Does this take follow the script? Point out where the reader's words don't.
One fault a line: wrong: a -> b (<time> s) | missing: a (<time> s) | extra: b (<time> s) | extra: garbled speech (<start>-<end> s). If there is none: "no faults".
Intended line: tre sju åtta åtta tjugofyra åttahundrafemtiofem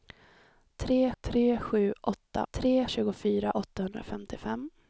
extra: tre (1.2 s)
wrong: åtta -> tre (2.5 s)